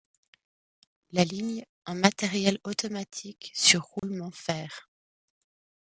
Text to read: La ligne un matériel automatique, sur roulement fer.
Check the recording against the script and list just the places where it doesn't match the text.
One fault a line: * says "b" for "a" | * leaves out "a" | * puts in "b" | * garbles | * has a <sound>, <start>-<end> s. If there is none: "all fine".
* has a dropout, 4.0-4.0 s